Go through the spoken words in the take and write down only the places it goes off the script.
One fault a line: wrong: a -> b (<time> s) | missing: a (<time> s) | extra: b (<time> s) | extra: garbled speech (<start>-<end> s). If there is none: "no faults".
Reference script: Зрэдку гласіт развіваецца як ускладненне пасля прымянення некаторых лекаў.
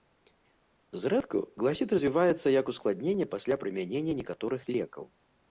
no faults